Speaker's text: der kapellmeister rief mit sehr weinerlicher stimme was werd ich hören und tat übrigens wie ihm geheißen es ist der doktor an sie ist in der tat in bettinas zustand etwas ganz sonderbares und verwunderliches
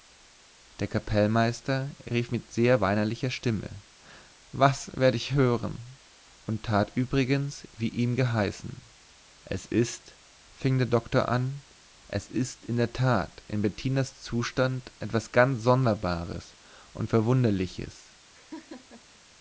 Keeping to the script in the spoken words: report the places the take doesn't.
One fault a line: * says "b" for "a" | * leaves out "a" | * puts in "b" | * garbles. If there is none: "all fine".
* puts in "fing"
* says "es" for "sie"